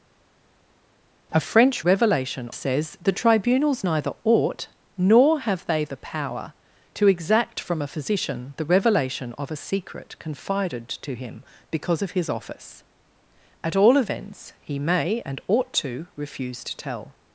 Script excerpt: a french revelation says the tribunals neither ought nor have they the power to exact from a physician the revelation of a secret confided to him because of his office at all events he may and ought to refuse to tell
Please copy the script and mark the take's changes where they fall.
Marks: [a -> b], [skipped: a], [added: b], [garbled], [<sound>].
a french revelation says the tribunals neither ought nor have they the power to exact from a physician the revelation of a secret confided to him because of his office at all events he may and ought to refuse to tell